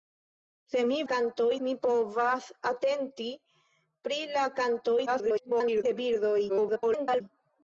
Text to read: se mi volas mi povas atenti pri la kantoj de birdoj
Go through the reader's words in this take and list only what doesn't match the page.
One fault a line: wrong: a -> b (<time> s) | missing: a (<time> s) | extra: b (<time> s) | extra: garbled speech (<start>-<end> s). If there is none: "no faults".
wrong: volas -> kantoj (1.1 s)
extra: garbled speech (5.1-5.8 s)
extra: garbled speech (6.5-7.2 s)